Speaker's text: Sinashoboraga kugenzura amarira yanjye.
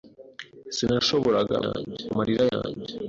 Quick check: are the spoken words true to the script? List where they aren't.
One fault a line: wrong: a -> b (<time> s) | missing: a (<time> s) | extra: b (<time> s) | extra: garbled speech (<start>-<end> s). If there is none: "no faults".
wrong: kugenzura -> yanjye (1.6 s)